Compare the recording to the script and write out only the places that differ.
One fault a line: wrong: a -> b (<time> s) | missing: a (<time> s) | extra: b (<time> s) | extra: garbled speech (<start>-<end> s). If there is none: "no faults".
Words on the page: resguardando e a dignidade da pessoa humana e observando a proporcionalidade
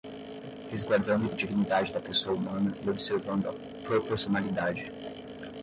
no faults